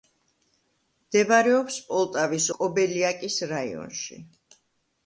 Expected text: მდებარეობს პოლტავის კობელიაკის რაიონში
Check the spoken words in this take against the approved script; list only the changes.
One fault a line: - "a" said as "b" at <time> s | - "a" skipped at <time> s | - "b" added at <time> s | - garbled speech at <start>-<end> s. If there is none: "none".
none